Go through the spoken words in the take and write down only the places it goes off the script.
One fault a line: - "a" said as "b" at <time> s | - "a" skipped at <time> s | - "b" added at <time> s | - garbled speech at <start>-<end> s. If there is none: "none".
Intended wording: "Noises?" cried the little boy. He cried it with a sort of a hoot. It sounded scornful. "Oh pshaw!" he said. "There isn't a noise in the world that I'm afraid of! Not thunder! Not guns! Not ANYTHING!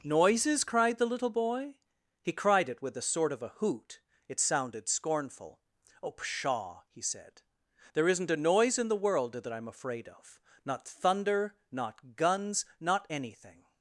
none